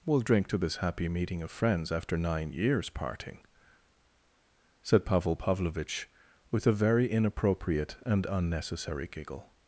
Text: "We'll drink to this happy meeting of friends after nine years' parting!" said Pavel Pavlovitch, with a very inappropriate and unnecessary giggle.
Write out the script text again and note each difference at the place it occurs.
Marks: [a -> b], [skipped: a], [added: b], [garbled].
"We'll drink to this happy meeting of friends after nine years' parting!" said Pavel Pavlovitch, with a very inappropriate and unnecessary giggle.